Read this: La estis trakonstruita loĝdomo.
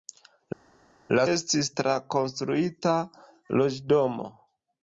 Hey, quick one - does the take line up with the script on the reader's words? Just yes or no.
yes